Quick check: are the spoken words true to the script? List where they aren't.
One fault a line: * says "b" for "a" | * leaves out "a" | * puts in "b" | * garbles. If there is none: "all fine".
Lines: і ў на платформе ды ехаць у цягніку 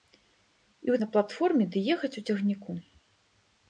all fine